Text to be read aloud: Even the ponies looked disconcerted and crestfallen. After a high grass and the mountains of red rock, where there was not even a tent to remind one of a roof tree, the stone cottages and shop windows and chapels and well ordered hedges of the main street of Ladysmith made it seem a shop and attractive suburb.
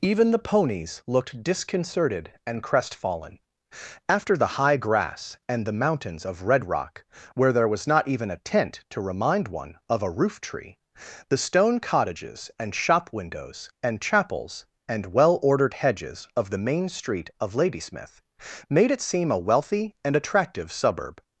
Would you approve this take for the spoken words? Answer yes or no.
no